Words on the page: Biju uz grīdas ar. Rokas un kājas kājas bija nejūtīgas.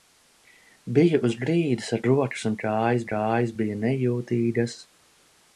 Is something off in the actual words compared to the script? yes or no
no